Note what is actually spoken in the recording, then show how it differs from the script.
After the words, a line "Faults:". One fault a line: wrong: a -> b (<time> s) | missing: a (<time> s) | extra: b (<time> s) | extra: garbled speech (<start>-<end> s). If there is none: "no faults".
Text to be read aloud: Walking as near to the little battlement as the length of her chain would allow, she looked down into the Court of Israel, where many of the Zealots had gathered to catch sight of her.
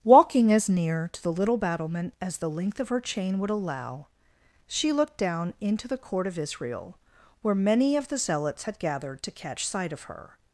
Walking as near to the little battlement as the length of her chain would allow, she looked down into the Court of Israel, where many of the Zealots had gathered to catch sight of her.
Faults:
no faults